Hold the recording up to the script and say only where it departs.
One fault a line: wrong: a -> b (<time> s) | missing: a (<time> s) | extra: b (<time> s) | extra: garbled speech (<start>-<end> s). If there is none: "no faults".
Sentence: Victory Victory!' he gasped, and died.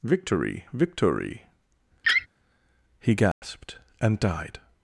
no faults